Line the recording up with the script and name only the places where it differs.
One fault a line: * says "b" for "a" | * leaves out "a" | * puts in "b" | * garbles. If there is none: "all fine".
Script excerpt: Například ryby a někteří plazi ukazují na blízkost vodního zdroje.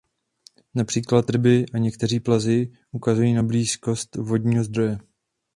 all fine